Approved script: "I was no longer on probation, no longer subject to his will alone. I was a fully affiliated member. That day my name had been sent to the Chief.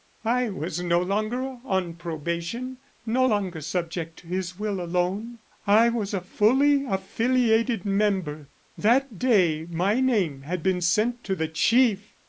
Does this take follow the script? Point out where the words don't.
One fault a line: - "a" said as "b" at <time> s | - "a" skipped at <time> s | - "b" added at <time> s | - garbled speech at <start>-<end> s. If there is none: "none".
none